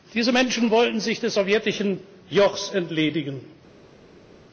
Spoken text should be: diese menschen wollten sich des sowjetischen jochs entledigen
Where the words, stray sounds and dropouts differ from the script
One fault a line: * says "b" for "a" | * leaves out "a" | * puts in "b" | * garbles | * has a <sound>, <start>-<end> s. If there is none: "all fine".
all fine